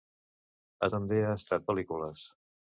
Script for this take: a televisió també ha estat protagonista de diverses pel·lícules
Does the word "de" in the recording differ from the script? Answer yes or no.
yes